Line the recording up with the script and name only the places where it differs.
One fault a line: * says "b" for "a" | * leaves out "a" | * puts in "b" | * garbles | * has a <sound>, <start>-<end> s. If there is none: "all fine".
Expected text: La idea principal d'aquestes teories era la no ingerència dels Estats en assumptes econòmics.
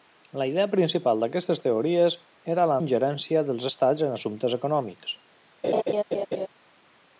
* leaves out "no"
* has a laugh, 5.6-6.5 s